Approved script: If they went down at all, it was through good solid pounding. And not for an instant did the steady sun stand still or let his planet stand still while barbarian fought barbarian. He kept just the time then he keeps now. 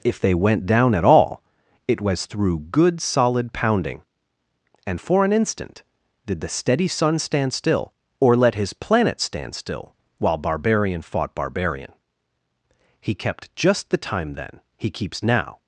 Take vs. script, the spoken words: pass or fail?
fail